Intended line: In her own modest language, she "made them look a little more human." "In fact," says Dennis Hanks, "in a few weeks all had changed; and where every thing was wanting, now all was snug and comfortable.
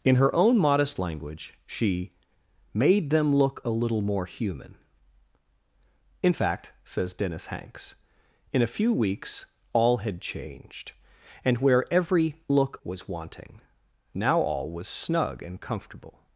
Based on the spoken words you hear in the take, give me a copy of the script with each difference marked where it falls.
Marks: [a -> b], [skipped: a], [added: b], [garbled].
In her own modest language, she "made them look a little more human." "In fact," says Dennis Hanks, "in a few weeks all had changed; and where every [thing -> look] was wanting, now all was snug and comfortable.